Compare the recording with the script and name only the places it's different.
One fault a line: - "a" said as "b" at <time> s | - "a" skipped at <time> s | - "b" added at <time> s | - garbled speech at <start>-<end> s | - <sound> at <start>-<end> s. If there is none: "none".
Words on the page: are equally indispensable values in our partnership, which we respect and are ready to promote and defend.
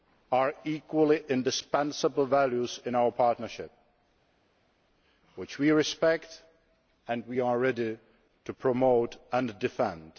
none